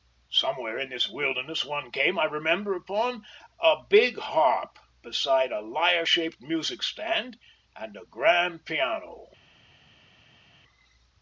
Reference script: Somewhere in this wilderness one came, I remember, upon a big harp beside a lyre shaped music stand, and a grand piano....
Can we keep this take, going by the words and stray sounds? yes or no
yes